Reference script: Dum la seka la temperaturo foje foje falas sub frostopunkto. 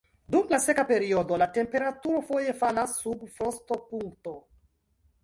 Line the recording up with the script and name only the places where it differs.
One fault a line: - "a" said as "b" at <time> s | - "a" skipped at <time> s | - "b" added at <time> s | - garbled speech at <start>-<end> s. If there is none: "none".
- "periodo" added at 0.9 s
- "foje" skipped at 2.5 s